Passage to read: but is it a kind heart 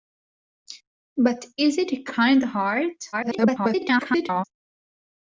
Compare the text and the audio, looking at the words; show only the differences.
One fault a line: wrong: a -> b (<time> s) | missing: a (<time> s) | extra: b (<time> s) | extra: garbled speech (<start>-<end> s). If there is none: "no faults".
extra: garbled speech (3.1-4.4 s)